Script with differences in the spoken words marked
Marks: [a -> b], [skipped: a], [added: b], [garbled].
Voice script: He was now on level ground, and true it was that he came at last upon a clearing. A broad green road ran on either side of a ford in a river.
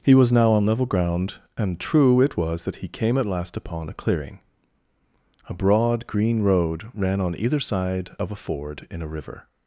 He was now on level ground, and true it was that he came at last upon a clearing. A broad green road ran on either side of a ford in a river.